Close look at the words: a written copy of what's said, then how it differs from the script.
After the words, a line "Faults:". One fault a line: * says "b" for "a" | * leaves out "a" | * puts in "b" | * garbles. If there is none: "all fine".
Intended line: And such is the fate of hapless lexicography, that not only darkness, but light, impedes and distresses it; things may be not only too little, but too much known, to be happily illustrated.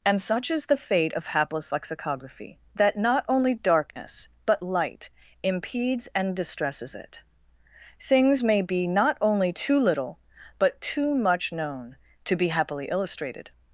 And such is the fate of hapless lexicography, that not only darkness, but light, impedes and distresses it; things may be not only too little, but too much known, to be happily illustrated.
Faults:
all fine